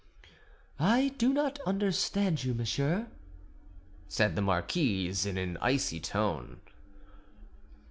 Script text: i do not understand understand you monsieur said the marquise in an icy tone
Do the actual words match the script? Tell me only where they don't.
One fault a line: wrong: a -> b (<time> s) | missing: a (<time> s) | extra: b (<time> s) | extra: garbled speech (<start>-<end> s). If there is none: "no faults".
missing: understand (2.4 s)